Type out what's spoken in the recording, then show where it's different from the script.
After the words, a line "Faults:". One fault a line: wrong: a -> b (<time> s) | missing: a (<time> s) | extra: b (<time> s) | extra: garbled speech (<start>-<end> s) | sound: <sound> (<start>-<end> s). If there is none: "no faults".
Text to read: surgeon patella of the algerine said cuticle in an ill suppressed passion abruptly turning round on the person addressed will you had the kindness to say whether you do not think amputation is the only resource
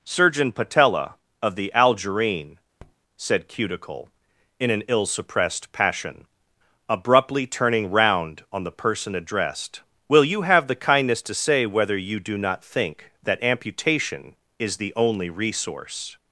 surgeon patella of the algerine said cuticle in an ill suppressed passion abruptly turning round on the person addressed will you have the kindness to say whether you do not think that amputation is the only resource
Faults:
sound: tap (2.8-3.0 s)
wrong: had -> have (10.4 s)
extra: that (13.2 s)